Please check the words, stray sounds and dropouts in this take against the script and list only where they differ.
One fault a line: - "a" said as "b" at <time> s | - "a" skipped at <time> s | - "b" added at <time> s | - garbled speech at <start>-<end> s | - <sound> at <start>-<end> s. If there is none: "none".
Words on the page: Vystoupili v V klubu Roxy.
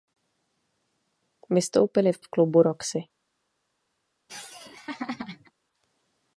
- laugh at 4.3-5.5 s